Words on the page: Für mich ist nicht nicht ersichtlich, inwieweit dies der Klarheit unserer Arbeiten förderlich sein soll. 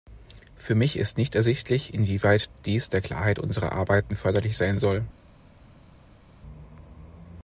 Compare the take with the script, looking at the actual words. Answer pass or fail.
fail